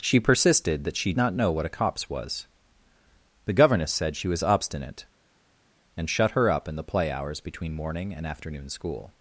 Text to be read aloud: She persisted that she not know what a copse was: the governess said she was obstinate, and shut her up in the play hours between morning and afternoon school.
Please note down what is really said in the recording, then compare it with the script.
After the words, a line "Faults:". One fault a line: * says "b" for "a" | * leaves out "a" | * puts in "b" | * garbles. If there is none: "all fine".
She persisted that she not know what a copse was: the governess said she was obstinate, and shut her up in the play hours between morning and afternoon school.
Faults:
all fine